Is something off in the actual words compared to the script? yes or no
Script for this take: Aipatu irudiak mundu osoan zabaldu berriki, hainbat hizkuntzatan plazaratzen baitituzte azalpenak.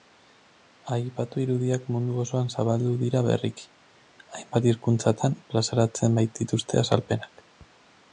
yes